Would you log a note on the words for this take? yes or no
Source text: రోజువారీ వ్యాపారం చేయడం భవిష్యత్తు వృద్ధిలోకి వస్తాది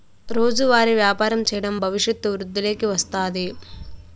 no